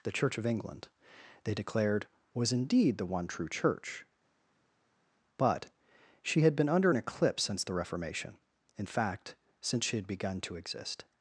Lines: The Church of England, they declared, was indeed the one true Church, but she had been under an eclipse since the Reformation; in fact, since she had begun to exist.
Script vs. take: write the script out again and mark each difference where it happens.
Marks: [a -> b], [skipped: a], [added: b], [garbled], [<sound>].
The Church of England, they declared, was indeed the one true Church, but she had been under an eclipse since the Reformation; in fact, since she had begun to exist.